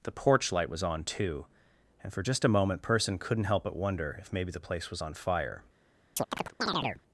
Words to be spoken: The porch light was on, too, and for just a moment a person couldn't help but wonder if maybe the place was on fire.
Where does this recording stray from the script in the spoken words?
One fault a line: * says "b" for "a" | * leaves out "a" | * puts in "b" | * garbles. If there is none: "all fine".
* leaves out "a"